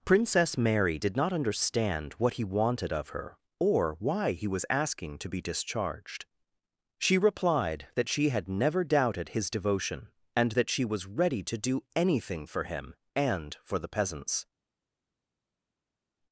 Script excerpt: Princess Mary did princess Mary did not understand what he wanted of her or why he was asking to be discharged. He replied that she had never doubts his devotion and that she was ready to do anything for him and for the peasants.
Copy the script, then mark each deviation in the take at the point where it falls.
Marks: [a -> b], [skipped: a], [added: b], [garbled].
Princess Mary did [skipped: princess Mary did] not understand what he wanted of her or why he was asking to be discharged. [He -> She] replied that she had never [doubts -> doubted] his devotion and that she was ready to do anything for him and for the peasants.